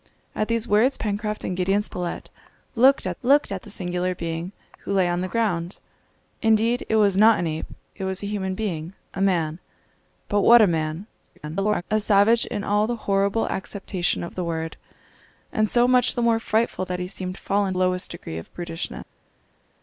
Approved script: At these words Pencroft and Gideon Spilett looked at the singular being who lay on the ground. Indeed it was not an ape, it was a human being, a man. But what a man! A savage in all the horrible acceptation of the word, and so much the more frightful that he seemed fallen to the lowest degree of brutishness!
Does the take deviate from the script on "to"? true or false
true